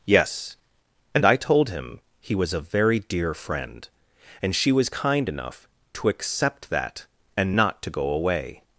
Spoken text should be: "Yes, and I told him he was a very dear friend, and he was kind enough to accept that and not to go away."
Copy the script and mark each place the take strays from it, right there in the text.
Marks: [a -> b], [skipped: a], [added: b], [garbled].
"Yes, and I told him he was a very dear friend, and [he -> she] was kind enough to accept that and not to go away."